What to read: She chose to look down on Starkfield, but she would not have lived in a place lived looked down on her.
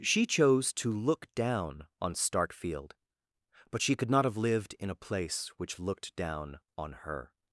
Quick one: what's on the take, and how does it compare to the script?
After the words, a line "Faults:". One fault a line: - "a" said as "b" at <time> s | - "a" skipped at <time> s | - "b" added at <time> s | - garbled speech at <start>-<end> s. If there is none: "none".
She chose to look down on Starkfield, but she could not have lived in a place which looked down on her.
Faults:
- "would" said as "could" at 4.0 s
- "lived" said as "which" at 5.6 s